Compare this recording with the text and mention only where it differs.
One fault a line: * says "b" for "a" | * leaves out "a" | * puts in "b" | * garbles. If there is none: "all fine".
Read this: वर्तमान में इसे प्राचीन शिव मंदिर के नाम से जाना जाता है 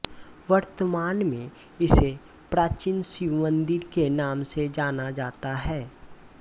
all fine